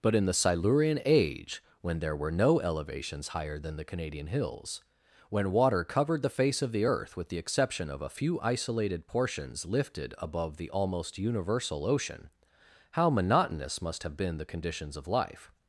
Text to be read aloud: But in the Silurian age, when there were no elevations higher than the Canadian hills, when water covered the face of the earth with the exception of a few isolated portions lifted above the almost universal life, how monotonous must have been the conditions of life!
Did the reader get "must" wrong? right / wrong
right